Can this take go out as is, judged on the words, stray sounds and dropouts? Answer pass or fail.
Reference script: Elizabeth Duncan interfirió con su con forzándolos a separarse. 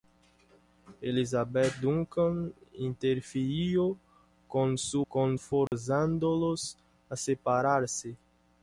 fail